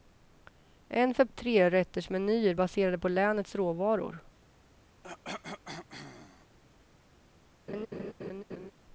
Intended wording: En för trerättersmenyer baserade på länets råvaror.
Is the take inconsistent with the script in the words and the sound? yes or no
yes